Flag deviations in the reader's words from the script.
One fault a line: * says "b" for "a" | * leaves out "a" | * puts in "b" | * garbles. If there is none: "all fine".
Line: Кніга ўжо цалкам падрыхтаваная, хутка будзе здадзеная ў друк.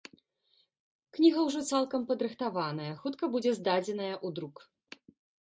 all fine